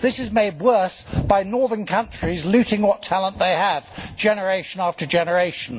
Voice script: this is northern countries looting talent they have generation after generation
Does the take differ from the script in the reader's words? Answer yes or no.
yes